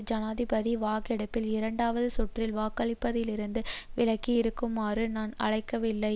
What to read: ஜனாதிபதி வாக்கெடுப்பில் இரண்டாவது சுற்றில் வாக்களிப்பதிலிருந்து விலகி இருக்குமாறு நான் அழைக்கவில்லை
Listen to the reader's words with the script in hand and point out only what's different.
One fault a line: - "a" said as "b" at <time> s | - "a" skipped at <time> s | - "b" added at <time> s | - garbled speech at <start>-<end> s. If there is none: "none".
none